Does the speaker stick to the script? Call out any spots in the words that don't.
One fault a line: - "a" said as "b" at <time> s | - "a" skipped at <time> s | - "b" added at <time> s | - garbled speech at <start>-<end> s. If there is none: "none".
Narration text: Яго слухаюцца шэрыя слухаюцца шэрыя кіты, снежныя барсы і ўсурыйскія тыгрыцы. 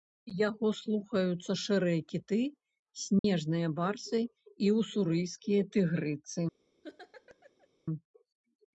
- "слухаюцца шэрыя" skipped at 2.0 s